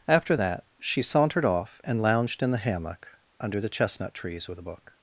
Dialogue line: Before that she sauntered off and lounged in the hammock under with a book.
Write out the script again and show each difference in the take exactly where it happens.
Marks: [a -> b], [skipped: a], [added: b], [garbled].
[Before -> After] that she sauntered off and lounged in the hammock under [added: the chestnut trees] with a book.